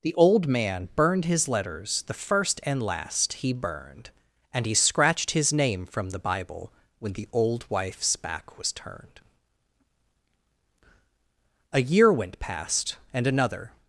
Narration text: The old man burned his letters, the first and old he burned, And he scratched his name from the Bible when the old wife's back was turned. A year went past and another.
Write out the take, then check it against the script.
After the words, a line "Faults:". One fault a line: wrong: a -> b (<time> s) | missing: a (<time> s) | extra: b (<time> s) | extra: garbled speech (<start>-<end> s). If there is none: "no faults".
The old man burned his letters, the first and last he burned, And he scratched his name from the Bible when the old wife's back was turned. A year went past and another.
Faults:
wrong: old -> last (2.8 s)